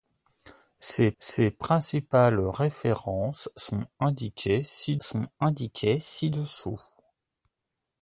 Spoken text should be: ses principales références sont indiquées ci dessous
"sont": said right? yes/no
yes